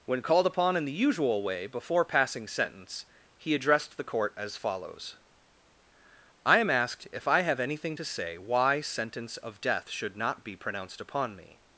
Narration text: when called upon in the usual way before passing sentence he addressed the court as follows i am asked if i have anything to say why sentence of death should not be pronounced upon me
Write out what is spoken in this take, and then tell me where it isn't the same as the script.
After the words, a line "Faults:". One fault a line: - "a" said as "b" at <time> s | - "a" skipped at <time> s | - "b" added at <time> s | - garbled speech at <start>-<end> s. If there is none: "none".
when called upon in the usual way before passing sentence he addressed the court as follows i am asked if i have anything to say why sentence of death should not be pronounced upon me
Faults:
none